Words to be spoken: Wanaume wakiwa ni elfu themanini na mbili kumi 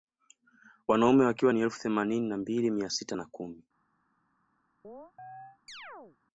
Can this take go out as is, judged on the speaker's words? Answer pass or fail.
fail